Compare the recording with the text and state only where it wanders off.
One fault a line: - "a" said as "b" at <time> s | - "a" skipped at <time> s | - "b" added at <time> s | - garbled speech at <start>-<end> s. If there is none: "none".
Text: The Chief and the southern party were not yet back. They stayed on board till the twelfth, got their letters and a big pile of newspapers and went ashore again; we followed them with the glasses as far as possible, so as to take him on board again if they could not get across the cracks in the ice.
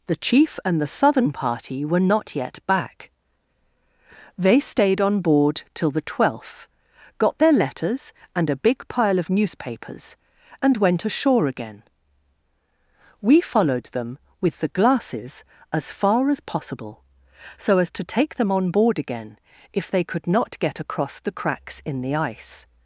- "him" said as "them" at 18.4 s